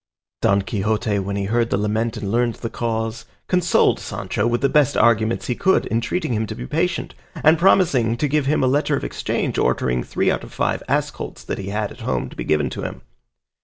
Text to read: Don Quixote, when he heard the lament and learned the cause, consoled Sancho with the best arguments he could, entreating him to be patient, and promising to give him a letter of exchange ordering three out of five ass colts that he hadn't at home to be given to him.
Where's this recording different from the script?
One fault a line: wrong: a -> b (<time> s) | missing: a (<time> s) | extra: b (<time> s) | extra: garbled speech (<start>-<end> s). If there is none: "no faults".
wrong: hadn't -> had (11.7 s)